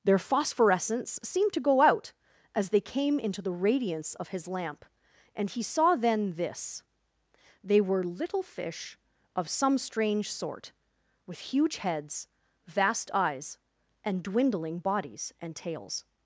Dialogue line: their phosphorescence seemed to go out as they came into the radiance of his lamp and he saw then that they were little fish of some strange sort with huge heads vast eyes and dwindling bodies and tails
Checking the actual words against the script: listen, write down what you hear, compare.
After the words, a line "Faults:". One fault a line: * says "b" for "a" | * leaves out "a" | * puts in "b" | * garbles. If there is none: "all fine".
their phosphorescence seemed to go out as they came into the radiance of his lamp and he saw then this they were little fish of some strange sort with huge heads vast eyes and dwindling bodies and tails
Faults:
* says "this" for "that"